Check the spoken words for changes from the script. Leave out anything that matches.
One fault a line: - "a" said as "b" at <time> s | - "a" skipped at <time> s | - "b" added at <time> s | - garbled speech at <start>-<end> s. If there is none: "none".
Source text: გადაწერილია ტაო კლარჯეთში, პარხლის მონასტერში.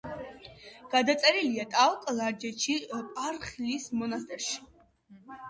none